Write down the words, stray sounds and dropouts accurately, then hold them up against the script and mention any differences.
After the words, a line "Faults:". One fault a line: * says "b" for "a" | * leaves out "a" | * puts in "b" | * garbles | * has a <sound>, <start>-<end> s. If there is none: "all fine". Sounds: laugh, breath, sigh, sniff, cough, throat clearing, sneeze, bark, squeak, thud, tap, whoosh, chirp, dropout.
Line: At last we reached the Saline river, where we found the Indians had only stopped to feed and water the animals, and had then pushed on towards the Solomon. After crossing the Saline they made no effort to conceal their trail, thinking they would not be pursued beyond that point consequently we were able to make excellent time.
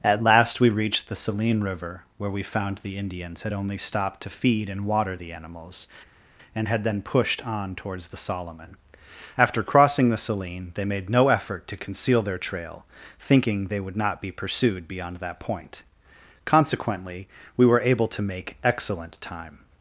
At last we reached the Saline river, where we found the Indians had only stopped to feed and water the animals, and had then pushed on towards the Solomon. After crossing the Saline they made no effort to conceal their trail, thinking they would not be pursued beyond that point consequently we were able to make excellent time.
Faults:
all fine